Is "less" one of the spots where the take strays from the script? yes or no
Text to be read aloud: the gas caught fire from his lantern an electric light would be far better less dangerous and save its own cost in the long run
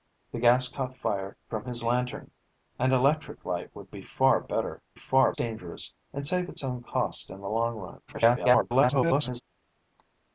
yes